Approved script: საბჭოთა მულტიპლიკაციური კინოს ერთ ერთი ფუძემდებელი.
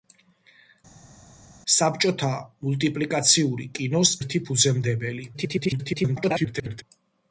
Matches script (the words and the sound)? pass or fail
fail